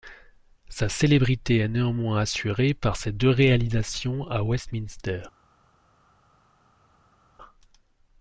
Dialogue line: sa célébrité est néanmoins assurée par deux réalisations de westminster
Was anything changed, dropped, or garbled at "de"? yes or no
yes